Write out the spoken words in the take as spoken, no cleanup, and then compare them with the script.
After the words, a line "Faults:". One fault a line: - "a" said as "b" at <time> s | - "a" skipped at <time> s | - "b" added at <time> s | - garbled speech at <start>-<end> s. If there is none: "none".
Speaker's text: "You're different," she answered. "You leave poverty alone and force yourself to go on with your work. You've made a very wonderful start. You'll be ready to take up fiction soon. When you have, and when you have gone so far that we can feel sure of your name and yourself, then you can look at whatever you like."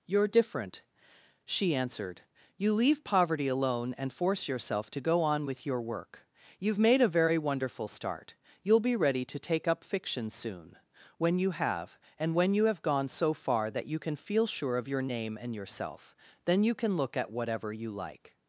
"You're different," she answered. "You leave poverty alone and force yourself to go on with your work. You've made a very wonderful start. You'll be ready to take up fiction soon. When you have, and when you have gone so far that you can feel sure of your name and yourself, then you can look at whatever you like."
Faults:
- "we" said as "you" at 13.9 s